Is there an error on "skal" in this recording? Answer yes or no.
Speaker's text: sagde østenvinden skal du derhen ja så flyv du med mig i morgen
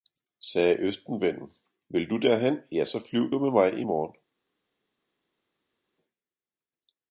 yes